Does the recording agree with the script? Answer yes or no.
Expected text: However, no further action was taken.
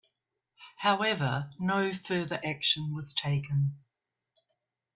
yes